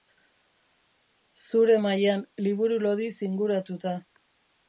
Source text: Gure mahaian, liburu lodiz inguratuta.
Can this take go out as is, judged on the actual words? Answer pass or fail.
fail